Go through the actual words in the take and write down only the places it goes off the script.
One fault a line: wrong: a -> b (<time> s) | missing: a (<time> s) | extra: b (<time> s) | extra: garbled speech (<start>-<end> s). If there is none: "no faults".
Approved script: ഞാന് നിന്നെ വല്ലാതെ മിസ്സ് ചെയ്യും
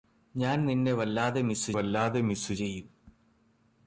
extra: വല്ലാതെ മിസ്സ് (1.7 s)